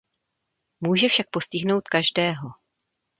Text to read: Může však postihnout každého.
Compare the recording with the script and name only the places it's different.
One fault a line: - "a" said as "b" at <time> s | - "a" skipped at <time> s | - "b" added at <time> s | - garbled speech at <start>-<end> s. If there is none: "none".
none